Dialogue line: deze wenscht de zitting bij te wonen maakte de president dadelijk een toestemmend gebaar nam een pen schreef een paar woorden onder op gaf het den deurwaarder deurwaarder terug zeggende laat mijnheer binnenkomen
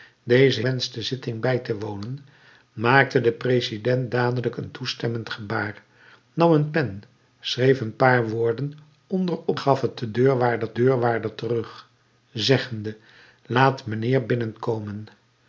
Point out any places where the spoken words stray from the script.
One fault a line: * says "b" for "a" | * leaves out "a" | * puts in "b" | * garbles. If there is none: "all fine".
all fine